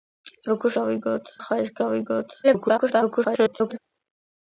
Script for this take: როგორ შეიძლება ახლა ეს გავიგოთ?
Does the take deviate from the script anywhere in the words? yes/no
yes